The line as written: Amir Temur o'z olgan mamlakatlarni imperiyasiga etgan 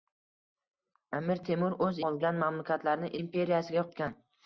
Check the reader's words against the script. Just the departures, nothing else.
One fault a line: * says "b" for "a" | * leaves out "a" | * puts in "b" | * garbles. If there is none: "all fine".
all fine